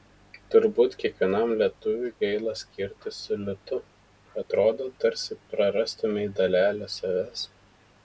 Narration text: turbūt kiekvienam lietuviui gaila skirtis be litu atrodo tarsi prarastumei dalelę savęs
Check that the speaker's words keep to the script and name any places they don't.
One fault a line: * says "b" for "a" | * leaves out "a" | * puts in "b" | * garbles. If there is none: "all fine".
* says "su" for "be"